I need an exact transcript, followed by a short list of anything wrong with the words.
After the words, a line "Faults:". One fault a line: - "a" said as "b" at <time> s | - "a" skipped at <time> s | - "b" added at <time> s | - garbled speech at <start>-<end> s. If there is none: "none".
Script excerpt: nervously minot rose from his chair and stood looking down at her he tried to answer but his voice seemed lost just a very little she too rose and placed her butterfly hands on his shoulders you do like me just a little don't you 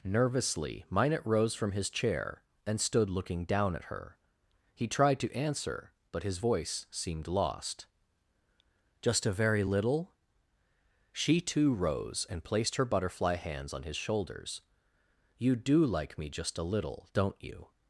nervously minot rose from his chair and stood looking down at her he tried to answer but his voice seemed lost just a very little she too rose and placed her butterfly hands on his shoulders you do like me just a little don't you
Faults:
none